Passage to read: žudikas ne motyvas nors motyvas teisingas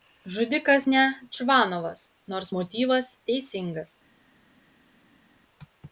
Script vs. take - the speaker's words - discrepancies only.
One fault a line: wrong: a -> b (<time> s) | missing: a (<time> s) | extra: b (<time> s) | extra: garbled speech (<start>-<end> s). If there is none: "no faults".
wrong: motyvas -> čvanovas (1.4 s)